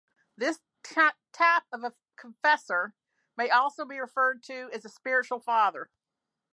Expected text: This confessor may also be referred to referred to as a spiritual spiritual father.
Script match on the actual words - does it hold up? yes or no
no